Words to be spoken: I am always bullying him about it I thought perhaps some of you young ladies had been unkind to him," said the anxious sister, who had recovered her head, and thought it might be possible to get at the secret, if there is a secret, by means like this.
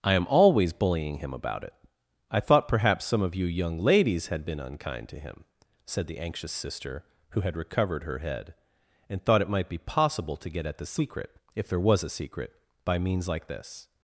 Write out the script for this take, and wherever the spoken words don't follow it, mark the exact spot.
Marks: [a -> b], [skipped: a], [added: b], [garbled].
I am always bullying him about it I thought perhaps some of you young ladies had been unkind to him," said the anxious sister, who had recovered her head, and thought it might be possible to get at the secret, if there [is -> was] a secret, by means like this.